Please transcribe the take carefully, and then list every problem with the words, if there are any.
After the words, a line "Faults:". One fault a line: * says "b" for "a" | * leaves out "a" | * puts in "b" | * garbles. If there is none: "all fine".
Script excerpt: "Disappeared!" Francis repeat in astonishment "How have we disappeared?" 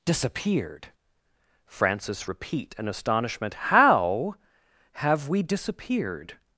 "Disappeared!" Francis repeat in astonishment "How have we disappeared?"
Faults:
all fine